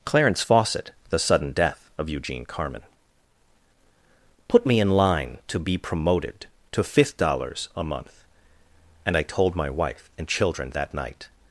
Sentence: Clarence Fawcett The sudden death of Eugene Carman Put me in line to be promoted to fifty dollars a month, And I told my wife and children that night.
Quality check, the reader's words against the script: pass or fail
fail